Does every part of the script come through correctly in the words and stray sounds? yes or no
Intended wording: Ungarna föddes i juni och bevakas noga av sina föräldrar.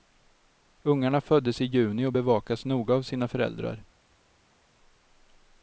yes